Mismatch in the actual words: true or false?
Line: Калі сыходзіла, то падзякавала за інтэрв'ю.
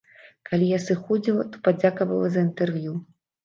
true